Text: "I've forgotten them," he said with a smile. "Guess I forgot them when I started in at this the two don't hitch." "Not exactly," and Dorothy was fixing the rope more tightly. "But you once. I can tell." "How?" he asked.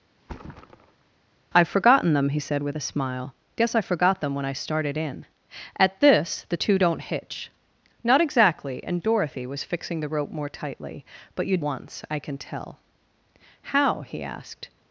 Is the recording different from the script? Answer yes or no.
no